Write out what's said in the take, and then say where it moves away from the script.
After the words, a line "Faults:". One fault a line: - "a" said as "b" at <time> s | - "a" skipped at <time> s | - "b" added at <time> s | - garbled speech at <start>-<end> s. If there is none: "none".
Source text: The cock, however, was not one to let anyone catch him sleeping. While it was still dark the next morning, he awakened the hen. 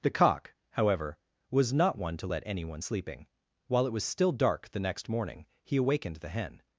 The cock, however, was not one to let anyone sleeping. While it was still dark the next morning, he awakened the hen.
Faults:
- "catch him" skipped at 2.8 s